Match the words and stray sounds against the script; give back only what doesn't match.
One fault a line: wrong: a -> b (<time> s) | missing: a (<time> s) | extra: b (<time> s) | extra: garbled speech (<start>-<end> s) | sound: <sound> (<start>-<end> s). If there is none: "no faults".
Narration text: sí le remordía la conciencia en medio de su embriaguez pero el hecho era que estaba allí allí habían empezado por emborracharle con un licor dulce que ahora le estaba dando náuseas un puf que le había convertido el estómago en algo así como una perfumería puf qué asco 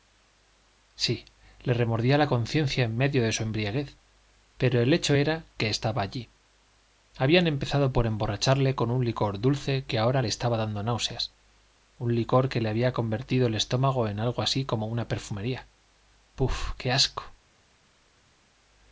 missing: allí (6.3 s)
wrong: puf -> licor (12.1 s)